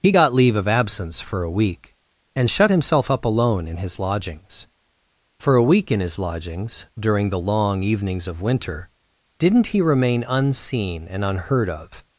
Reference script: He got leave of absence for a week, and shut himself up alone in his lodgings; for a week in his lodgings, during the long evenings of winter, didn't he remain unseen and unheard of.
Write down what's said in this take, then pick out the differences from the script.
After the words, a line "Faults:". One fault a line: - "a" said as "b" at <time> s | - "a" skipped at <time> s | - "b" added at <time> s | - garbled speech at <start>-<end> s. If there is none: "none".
He got leave of absence for a week, and shut himself up alone in his lodgings; for a week in his lodgings, during the long evenings of winter, didn't he remain unseen and unheard of.
Faults:
none